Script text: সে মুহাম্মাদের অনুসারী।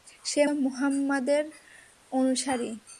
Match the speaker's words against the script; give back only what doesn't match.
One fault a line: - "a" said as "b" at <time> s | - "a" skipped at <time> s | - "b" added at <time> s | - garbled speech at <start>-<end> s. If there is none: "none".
none